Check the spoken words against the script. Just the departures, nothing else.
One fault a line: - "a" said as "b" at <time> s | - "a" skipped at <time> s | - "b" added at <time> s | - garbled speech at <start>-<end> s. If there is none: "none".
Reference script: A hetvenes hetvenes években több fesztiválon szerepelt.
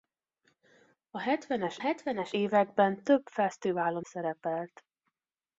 none